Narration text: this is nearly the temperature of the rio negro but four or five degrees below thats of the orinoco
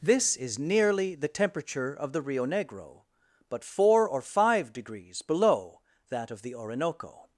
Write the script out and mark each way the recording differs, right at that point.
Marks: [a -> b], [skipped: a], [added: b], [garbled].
this is nearly the temperature of the rio negro but four or five degrees below [thats -> that] of the orinoco